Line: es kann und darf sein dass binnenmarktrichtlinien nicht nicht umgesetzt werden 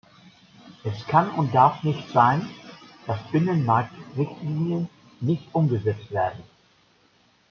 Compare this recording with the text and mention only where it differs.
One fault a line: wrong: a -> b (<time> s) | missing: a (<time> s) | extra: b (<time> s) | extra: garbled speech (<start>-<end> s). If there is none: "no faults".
extra: nicht (1.8 s)
missing: nicht (5.4 s)